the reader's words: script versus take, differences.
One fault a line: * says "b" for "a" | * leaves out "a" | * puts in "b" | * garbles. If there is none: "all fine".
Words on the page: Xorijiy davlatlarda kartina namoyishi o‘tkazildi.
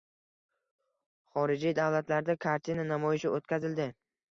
all fine